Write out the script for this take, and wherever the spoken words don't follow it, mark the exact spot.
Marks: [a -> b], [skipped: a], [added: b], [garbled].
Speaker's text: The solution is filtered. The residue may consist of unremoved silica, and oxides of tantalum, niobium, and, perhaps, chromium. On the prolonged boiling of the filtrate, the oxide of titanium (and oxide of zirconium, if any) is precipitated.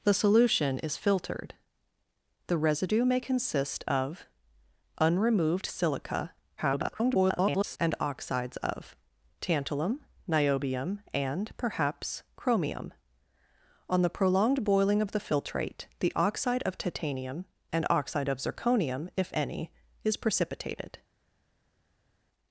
The solution is filtered. The residue may consist of unremoved silica, [garbled] and oxides of tantalum, niobium, and, perhaps, chromium. On the prolonged boiling of the filtrate, the oxide of titanium (and oxide of zirconium, if any) is precipitated.